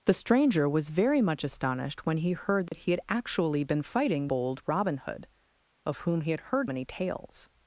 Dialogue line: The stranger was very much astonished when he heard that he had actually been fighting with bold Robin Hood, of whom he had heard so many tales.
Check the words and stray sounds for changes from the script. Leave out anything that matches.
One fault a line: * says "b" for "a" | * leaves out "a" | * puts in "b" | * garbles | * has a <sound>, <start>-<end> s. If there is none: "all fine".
* has a dropout, 2.7-2.7 s
* leaves out "with"
* leaves out "so"